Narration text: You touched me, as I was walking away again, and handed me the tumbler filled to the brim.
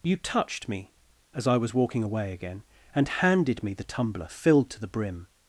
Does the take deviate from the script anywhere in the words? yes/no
no